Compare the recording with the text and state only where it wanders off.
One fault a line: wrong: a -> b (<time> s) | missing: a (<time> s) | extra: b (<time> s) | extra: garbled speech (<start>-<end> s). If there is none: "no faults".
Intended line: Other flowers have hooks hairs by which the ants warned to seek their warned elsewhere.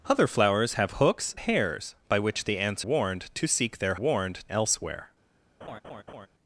no faults